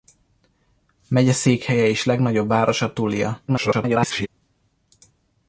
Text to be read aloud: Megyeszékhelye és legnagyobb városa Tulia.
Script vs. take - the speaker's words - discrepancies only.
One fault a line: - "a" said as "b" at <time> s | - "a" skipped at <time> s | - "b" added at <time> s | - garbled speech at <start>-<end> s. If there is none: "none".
- garbled speech at 3.5-4.3 s